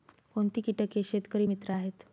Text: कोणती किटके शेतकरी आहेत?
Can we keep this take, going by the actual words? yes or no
no